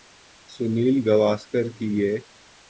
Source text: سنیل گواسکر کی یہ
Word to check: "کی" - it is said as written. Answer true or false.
true